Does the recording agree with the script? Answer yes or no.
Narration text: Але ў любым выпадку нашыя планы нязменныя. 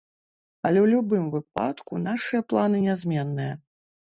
yes